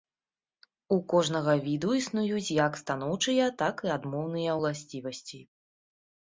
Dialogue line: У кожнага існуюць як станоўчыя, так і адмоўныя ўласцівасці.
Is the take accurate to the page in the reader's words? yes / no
no